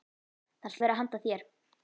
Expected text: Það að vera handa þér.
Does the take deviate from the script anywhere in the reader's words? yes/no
no